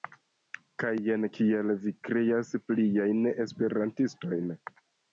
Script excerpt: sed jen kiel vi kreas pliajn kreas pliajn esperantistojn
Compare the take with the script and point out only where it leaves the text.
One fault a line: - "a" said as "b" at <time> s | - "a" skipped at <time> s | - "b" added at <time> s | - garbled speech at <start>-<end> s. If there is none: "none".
- "sed" said as "kaj" at 0.8 s
- "kreas pliajn" skipped at 3.2 s